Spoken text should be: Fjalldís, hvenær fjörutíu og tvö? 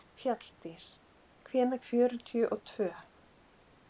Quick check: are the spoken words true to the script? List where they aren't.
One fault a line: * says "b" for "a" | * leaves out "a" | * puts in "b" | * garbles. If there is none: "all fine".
all fine